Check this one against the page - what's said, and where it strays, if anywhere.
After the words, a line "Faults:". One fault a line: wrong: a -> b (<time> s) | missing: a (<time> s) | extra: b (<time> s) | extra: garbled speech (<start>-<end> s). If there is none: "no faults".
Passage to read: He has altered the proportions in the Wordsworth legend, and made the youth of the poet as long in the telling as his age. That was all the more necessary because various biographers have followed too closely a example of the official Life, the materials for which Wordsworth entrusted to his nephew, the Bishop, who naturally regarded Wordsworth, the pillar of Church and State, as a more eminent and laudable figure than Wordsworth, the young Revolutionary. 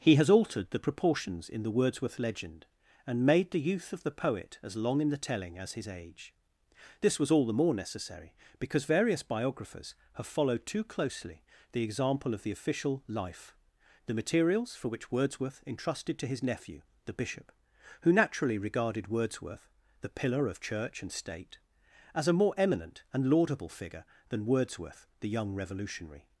He has altered the proportions in the Wordsworth legend, and made the youth of the poet as long in the telling as his age. This was all the more necessary because various biographers have followed too closely the example of the official Life, the materials for which Wordsworth entrusted to his nephew, the Bishop, who naturally regarded Wordsworth, the pillar of Church and State, as a more eminent and laudable figure than Wordsworth, the young Revolutionary.
Faults:
wrong: That -> This (7.0 s)
wrong: a -> the (11.7 s)